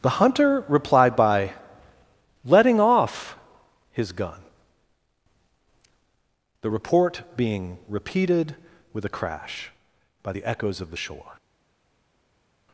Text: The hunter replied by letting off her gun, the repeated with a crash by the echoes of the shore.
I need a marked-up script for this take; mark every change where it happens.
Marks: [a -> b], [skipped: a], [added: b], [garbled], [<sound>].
The hunter replied by letting off [her -> his] gun, the [added: report being] repeated with a crash by the echoes of the shore.